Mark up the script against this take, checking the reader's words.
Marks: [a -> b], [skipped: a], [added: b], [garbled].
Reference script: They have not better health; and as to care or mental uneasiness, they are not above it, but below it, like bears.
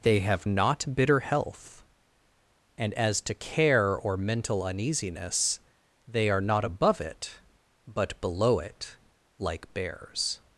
They have not [better -> bitter] health; and as to care or mental uneasiness, they are not above it, but below it, like bears.